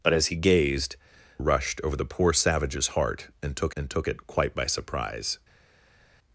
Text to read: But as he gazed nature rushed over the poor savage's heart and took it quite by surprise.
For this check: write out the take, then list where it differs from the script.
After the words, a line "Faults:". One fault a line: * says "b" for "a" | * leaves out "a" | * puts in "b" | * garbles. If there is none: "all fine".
But as he gazed rushed over the poor savage's heart and took and took it quite by surprise.
Faults:
* leaves out "nature"
* puts in "and took"